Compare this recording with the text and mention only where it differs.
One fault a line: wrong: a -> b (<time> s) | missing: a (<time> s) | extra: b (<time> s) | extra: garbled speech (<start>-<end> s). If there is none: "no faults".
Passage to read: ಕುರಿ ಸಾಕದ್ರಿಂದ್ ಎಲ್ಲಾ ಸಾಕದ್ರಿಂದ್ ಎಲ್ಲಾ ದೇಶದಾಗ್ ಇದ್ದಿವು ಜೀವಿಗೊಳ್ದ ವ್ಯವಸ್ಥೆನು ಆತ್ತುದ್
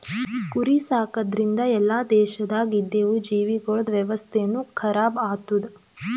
missing: ಸಾಕದ್ರಿಂದ್ ಎಲ್ಲಾ (2.0 s)
extra: ಖರಾಬ್ (4.7 s)